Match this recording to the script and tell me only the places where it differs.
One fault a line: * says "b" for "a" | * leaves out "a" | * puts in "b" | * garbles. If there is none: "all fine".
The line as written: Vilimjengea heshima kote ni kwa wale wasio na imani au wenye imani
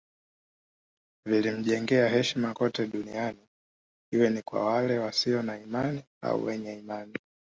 * puts in "duniani iwe"